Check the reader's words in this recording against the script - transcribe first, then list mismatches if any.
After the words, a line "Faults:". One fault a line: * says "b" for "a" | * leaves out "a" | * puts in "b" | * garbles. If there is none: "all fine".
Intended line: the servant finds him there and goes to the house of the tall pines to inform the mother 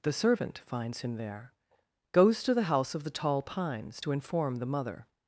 the servant finds him there goes to the house of the tall pines to inform the mother
Faults:
* leaves out "and"